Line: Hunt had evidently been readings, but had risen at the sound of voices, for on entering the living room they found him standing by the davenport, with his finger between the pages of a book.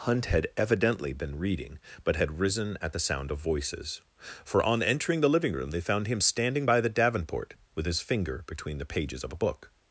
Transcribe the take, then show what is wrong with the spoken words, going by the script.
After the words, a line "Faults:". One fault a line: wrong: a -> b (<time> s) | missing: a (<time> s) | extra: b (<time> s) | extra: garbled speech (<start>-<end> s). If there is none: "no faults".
Hunt had evidently been reading, but had risen at the sound of voices, for on entering the living room they found him standing by the davenport, with his finger between the pages of a book.
Faults:
wrong: readings -> reading (1.4 s)